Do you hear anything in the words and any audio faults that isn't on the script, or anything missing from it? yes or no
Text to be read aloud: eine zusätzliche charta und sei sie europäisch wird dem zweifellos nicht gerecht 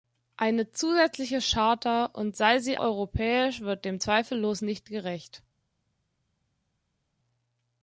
no